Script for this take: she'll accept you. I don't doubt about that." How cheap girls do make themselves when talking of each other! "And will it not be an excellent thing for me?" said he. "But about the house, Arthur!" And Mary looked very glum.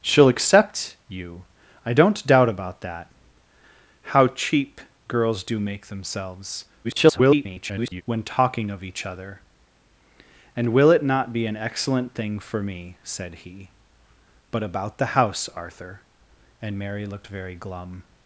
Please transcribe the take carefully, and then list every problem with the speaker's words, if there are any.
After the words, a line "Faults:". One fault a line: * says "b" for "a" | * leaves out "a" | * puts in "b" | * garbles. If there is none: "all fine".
she'll accept you. I don't doubt about that." How cheap girls do make themselves [garbled] when talking of each other! "And will it not be an excellent thing for me?" said he. "But about the house, Arthur!" And Mary looked very glum.
Faults:
* garbles